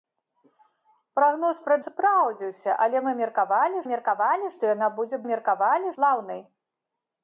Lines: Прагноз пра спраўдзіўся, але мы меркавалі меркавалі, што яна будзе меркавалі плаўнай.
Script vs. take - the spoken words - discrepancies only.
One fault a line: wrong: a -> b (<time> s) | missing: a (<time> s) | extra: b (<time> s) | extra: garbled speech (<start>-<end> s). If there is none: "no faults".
no faults